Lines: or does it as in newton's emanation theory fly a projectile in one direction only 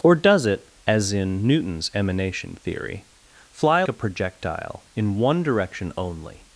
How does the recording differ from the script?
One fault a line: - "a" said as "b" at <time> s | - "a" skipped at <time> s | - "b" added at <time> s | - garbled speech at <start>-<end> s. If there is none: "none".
none